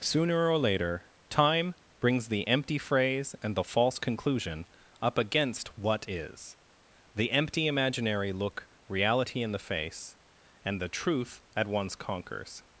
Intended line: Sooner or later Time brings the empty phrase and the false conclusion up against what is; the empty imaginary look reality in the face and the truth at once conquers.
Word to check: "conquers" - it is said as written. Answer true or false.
true